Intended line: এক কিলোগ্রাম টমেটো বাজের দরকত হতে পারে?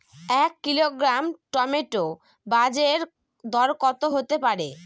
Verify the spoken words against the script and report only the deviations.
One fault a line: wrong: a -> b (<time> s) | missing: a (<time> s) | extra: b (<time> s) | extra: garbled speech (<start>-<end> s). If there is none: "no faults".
no faults